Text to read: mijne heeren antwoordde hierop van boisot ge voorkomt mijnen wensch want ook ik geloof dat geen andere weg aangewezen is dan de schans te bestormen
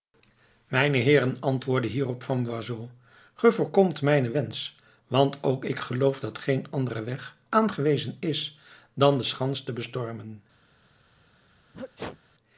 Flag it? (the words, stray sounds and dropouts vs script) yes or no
yes